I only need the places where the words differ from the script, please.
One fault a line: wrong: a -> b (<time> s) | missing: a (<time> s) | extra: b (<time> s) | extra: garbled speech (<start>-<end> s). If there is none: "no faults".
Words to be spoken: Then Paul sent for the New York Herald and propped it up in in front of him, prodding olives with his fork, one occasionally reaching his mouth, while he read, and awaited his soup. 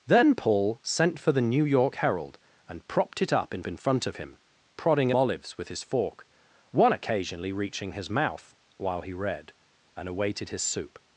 no faults